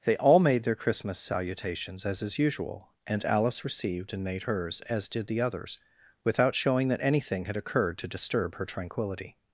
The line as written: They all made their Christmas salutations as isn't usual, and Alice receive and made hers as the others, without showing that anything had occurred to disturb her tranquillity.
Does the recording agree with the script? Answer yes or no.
no